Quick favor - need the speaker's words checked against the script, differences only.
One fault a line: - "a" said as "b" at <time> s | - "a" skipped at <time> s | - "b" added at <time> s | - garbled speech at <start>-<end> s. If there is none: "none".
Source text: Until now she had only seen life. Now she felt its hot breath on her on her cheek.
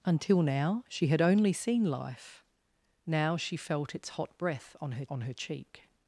none